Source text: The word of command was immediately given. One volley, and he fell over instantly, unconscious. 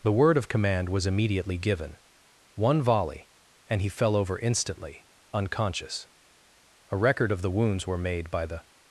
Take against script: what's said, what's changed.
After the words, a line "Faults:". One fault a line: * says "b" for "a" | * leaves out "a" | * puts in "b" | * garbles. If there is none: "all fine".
The word of command was immediately given. One volley, and he fell over instantly, unconscious. A record of the wounds were made by the
Faults:
* puts in "A record of the wounds were made by the"